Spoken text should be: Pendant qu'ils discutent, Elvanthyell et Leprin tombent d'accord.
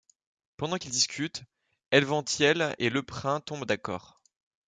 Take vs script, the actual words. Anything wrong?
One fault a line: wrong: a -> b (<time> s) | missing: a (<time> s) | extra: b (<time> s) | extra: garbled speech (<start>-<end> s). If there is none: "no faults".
no faults